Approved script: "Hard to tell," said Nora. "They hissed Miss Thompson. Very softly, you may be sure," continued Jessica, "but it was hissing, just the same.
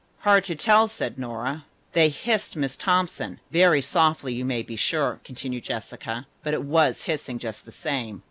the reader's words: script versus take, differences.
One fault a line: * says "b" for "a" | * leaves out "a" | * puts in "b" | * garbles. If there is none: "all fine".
all fine